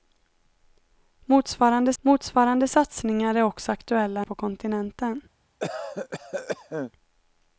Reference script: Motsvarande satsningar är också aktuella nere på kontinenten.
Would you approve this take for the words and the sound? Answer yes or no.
no